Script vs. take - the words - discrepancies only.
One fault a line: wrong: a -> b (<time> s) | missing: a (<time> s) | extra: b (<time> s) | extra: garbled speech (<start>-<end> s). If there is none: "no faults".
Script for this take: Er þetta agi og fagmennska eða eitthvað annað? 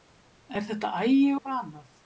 missing: og fagmennska eða (1.2 s)